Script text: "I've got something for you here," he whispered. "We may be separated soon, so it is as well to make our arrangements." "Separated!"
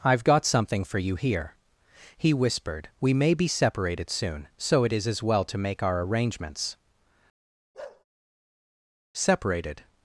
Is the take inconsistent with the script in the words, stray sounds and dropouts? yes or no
yes